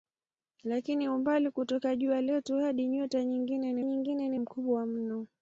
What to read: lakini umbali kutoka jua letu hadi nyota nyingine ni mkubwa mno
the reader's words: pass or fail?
fail